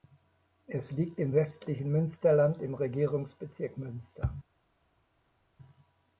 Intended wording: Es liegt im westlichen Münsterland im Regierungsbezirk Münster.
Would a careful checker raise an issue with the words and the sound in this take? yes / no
no